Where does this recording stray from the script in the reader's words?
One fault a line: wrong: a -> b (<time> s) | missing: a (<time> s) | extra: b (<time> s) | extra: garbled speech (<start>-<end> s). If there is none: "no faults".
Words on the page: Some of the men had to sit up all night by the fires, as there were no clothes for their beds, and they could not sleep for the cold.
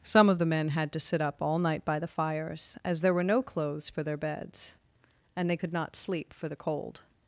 no faults